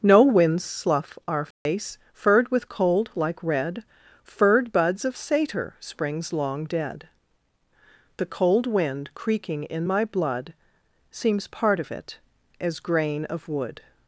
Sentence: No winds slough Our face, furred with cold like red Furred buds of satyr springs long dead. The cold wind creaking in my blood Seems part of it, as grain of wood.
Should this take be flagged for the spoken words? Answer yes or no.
no